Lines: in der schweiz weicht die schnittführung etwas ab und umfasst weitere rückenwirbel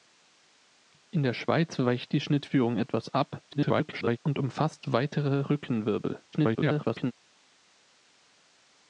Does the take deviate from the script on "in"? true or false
false